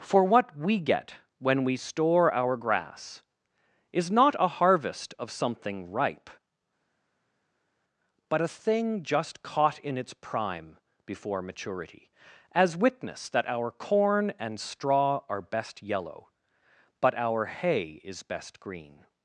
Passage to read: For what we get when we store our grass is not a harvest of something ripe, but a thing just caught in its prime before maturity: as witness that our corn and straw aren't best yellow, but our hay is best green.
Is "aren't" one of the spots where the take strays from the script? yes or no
yes